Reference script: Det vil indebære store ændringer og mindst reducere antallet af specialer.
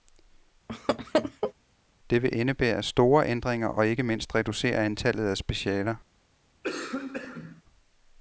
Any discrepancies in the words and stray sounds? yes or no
yes